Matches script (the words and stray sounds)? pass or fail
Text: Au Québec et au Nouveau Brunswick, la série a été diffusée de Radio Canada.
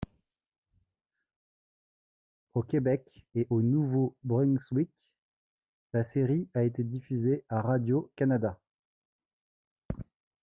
fail